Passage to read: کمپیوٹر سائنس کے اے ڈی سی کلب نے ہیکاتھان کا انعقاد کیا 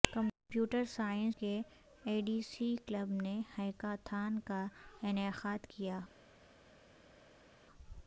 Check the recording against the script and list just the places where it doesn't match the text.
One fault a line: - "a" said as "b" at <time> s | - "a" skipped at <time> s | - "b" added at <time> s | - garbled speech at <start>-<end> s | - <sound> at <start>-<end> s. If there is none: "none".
none